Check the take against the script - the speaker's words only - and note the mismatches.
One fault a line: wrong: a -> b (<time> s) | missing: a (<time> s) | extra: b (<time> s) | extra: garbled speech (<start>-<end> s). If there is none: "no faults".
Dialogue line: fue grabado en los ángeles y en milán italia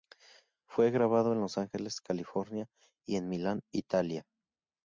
extra: california (2.0 s)